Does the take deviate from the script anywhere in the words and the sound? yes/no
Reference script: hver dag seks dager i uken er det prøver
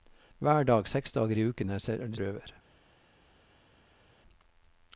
no